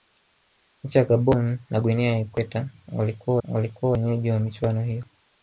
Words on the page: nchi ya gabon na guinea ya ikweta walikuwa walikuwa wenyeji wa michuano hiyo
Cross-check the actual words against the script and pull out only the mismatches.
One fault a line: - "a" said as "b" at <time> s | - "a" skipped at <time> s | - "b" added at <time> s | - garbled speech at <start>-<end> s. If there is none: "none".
none